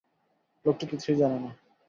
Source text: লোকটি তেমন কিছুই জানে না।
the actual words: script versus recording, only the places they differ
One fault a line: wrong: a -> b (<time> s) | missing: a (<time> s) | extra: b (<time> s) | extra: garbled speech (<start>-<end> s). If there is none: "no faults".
missing: তেমন (0.8 s)